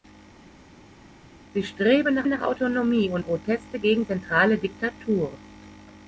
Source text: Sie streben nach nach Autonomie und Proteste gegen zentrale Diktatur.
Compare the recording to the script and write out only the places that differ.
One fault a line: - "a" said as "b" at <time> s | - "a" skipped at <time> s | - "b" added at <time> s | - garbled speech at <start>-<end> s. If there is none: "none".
none